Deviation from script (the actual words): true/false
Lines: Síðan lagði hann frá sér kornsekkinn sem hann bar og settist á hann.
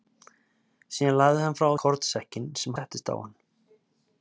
true